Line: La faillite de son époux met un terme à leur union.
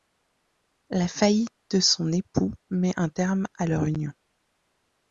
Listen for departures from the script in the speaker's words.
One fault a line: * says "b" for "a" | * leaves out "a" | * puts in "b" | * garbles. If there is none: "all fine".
all fine